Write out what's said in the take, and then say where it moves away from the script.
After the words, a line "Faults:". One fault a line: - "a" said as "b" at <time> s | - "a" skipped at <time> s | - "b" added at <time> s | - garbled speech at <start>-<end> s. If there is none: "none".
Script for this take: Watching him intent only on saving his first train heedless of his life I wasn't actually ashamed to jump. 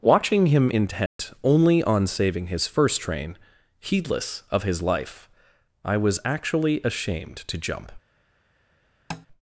Watching him intent only on saving his first train heedless of his life I was actually ashamed to jump.
Faults:
- "wasn't" said as "was" at 6.0 s